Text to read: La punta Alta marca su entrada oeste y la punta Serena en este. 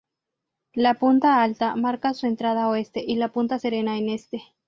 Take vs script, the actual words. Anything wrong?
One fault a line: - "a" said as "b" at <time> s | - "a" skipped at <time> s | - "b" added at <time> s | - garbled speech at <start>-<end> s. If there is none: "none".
none